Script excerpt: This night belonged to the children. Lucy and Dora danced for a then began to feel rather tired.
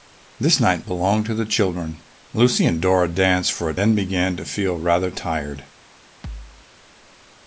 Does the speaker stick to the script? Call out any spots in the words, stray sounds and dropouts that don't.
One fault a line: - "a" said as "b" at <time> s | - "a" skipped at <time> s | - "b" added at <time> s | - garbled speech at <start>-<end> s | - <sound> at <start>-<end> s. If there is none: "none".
- thud at 6.2-6.7 s